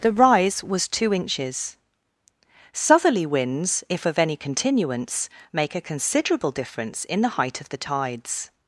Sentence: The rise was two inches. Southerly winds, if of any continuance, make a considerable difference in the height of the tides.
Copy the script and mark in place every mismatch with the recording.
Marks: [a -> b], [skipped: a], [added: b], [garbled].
The rise was two inches. Southerly winds, if of any continuance, make a considerable difference in the height of the tides.